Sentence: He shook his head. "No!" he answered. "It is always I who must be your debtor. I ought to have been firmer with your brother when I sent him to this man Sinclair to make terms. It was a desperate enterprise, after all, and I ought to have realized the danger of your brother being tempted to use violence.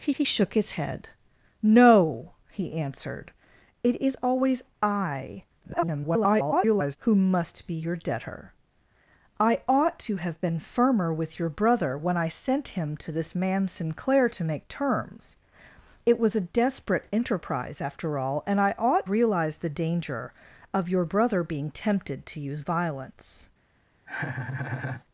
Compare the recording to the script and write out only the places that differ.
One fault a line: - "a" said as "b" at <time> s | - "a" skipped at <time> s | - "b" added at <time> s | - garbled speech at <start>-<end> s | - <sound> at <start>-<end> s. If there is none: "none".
- "he" added at 0.1 s
- garbled speech at 5.6-7.0 s
- "to have" skipped at 19.1 s
- laugh at 24.1-25.0 s